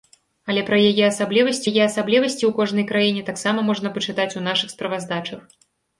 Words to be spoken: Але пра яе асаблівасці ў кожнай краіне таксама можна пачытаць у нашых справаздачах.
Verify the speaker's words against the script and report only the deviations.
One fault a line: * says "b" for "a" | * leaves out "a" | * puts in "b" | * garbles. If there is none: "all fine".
* puts in "яе асаблівасці"